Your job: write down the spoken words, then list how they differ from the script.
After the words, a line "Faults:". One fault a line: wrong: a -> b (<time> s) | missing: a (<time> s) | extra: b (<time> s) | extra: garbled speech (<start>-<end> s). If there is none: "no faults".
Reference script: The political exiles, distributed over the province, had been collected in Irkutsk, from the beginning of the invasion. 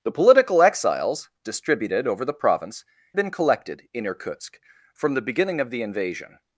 The political exiles, distributed over the province, been collected in Irkutsk, from the beginning of the invasion.
Faults:
missing: had (2.8 s)